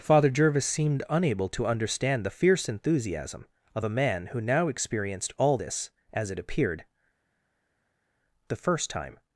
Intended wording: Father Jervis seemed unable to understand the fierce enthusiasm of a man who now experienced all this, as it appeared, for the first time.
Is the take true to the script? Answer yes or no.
no